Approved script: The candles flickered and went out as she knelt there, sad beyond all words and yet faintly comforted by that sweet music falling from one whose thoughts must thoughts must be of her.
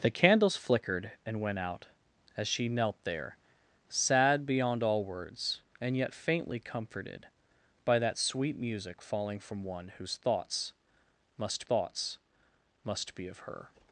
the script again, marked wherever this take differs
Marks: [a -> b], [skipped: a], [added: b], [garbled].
The candles flickered and went out as she knelt there, sad beyond all words and yet faintly comforted by that sweet music falling from one whose thoughts must thoughts must be of her.